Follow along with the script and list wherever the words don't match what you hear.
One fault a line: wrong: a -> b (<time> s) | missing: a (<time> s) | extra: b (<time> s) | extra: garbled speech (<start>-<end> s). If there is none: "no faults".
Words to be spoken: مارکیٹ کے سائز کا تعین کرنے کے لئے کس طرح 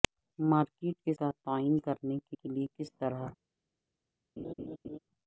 missing: سائز (1.1 s)
extra: کے (2.3 s)